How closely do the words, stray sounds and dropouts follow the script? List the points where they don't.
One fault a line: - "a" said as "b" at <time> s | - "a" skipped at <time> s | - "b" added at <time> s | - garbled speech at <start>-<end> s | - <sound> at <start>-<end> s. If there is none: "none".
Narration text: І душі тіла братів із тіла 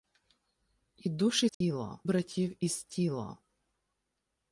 - dropout at 1.5-1.6 s